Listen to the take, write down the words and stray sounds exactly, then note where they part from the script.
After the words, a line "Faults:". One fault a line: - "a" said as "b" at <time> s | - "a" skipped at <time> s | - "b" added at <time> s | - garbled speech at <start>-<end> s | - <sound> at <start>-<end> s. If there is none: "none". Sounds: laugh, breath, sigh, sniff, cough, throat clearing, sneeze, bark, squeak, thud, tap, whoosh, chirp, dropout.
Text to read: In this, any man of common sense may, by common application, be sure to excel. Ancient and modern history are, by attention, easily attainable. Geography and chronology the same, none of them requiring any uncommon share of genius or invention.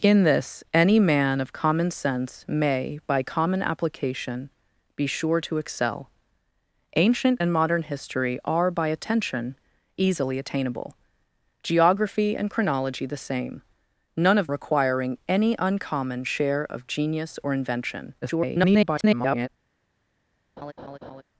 In this, any man of common sense may, by common application, be sure to excel. Ancient and modern history are, by attention, easily attainable. Geography and chronology the same, none of requiring any uncommon share of genius or invention. [garbled]
Faults:
- "them" skipped at 14.5 s
- garbled speech at 18.2-19.5 s
- laugh at 20.6-21.2 s